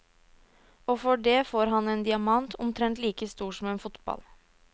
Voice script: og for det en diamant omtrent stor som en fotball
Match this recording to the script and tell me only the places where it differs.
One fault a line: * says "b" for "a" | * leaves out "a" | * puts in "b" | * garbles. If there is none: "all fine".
* puts in "får han"
* puts in "like"